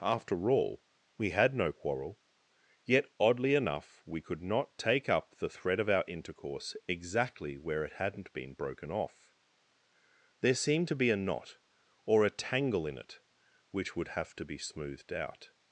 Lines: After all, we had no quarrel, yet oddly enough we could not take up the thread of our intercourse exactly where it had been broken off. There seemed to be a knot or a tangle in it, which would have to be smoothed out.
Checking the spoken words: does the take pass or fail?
fail